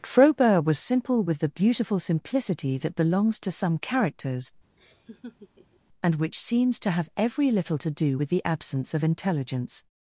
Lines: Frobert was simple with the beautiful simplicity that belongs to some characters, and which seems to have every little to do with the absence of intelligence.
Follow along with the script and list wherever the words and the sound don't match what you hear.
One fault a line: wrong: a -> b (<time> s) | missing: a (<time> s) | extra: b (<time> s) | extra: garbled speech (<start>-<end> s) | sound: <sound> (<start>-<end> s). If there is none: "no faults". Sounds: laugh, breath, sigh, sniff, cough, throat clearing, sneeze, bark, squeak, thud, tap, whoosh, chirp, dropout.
sound: laugh (4.8-5.8 s)